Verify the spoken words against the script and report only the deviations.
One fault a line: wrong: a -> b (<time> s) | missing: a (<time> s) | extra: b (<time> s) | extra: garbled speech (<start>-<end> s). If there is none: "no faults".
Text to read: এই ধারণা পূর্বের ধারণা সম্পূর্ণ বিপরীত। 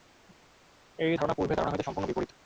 extra: হইতে (1.7 s)